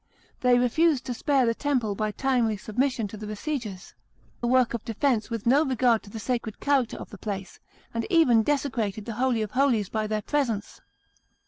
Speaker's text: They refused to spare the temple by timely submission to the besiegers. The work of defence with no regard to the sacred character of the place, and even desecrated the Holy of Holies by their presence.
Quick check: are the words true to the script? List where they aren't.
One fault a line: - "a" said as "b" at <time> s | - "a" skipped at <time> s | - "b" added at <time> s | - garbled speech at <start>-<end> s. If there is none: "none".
none